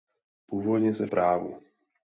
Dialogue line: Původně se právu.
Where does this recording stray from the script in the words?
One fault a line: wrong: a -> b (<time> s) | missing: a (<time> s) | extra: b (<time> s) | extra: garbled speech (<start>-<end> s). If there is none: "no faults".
no faults